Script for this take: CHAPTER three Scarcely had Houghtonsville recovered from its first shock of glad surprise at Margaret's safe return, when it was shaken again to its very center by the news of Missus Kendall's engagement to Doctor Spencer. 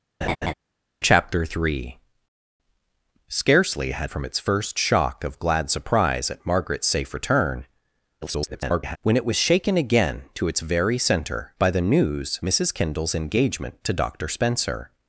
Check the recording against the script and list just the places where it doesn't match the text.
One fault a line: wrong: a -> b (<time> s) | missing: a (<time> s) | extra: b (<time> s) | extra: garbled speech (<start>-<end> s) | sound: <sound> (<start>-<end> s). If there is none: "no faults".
sound: laugh (0.2-0.5 s)
missing: Houghtonsville recovered (4.1 s)
extra: garbled speech (8.2-9.0 s)
missing: of (12.4 s)